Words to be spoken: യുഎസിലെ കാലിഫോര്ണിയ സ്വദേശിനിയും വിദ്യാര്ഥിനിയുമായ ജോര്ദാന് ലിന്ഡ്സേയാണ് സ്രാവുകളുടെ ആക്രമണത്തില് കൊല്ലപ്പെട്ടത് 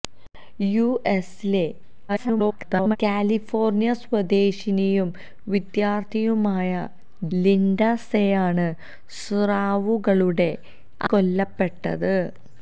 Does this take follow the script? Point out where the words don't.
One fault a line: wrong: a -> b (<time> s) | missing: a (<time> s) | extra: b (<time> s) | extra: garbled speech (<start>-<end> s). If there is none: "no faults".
extra: garbled speech (2.1-3.0 s)
missing: ജോര്ദാന് (6.7 s)
missing: ആക്രമണത്തില് (10.5 s)